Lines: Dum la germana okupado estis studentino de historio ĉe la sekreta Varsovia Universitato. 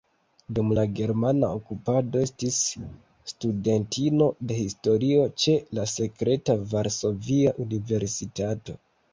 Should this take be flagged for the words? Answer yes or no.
no